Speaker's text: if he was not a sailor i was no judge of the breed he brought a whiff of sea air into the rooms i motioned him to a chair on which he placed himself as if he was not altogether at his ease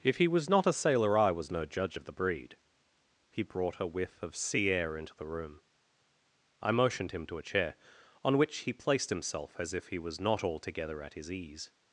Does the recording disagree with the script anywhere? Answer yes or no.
yes